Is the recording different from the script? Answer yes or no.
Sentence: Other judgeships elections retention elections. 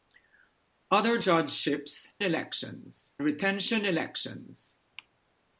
no